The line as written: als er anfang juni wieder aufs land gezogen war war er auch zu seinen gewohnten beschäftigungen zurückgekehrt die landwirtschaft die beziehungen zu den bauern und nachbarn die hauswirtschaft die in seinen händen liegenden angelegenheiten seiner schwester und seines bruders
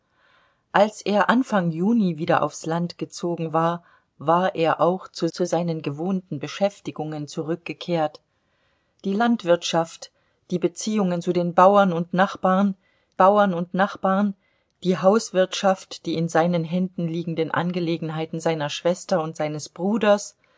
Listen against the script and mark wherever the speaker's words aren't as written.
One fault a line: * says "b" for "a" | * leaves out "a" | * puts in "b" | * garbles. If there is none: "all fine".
* puts in "zu"
* puts in "bauern und nachbarn"